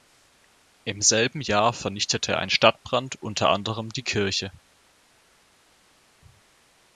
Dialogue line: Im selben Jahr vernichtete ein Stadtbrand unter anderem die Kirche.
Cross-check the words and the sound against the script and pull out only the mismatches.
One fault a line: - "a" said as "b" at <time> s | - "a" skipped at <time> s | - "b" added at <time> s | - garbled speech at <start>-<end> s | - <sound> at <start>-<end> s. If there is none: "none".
none